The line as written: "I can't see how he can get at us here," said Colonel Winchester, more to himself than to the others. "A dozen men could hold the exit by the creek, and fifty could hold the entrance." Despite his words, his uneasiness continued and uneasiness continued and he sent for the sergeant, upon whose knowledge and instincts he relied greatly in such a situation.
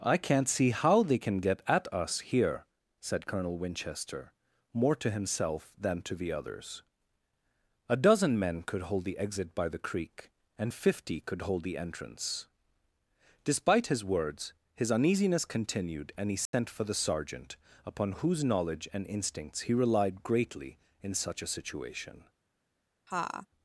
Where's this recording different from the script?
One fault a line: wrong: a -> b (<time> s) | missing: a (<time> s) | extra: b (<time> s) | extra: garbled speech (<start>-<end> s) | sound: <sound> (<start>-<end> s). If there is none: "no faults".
wrong: he -> they (1.0 s)
missing: uneasiness continued and (16.3 s)
sound: dropout (16.5-16.5 s)
sound: laugh (23.1-23.5 s)